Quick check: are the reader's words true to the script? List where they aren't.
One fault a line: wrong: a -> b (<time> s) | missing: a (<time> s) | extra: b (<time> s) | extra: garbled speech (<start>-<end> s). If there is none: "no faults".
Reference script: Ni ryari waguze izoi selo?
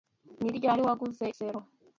missing: izoi (1.2 s)